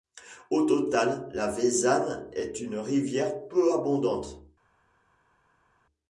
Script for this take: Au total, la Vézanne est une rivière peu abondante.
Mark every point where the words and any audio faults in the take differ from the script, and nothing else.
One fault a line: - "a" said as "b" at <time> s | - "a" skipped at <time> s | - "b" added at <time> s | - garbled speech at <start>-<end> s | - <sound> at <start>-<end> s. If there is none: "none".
none